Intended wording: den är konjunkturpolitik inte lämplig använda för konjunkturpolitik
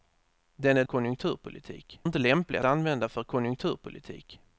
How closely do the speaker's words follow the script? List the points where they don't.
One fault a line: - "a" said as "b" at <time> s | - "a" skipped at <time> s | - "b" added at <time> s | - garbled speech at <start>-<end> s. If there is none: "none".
none